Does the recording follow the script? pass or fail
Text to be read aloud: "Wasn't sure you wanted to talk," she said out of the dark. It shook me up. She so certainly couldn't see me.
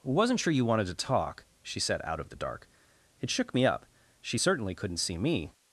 fail